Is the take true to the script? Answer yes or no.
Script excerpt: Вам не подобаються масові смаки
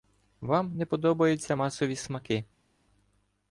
yes